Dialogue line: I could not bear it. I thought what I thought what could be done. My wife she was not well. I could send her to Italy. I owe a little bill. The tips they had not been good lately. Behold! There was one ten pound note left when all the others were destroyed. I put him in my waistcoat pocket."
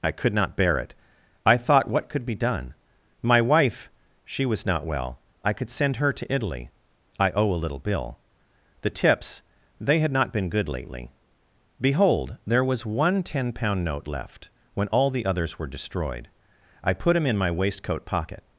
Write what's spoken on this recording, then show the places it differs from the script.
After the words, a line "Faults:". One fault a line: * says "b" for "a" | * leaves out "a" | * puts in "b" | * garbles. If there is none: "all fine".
I could not bear it. I thought what could be done. My wife she was not well. I could send her to Italy. I owe a little bill. The tips they had not been good lately. Behold! There was one ten pound note left when all the others were destroyed. I put him in my waistcoat pocket."
Faults:
* leaves out "I thought what"